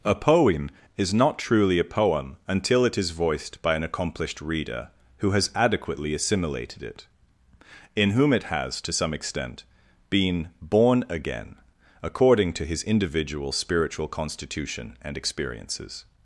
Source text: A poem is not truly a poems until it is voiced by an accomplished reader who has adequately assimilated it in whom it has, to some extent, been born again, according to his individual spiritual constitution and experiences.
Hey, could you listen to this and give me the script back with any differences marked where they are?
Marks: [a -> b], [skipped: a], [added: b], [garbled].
A poem is not truly a [poems -> poem] until it is voiced by an accomplished reader who has adequately assimilated it in whom it has, to some extent, been born again, according to his individual spiritual constitution and experiences.